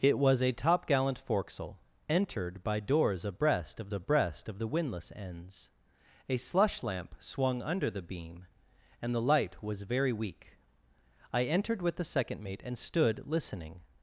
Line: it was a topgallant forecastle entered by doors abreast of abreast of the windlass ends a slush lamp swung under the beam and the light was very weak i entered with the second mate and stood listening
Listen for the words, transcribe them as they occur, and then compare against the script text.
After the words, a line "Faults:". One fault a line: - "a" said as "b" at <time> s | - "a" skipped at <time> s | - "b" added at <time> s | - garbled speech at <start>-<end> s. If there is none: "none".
it was a topgallant forecastle entered by doors abreast of abreast of the windlass ends a slush lamp swung under the beam and the light was very weak i entered with the second mate and stood listening
Faults:
none